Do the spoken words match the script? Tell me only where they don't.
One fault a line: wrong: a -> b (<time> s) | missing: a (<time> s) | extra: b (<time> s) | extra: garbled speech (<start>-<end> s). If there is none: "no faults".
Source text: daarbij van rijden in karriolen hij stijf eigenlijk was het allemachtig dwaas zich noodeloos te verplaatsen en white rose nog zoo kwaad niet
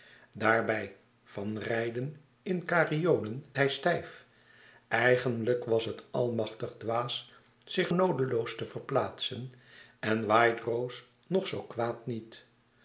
no faults